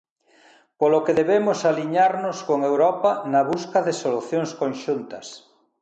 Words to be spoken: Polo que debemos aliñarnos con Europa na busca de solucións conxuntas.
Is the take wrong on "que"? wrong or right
right